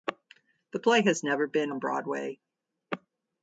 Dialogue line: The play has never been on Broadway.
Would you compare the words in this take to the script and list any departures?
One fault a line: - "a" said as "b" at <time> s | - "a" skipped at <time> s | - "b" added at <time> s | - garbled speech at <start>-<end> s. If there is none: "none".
none